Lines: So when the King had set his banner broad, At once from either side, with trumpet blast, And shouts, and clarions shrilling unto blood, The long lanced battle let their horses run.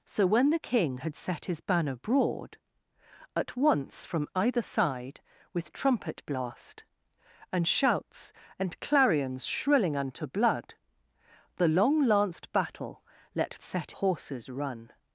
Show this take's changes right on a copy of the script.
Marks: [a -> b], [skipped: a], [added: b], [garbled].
So when the King had set his banner broad, At once from either side, with trumpet blast, And shouts, and clarions shrilling unto blood, The long lanced battle let [their -> set] horses run.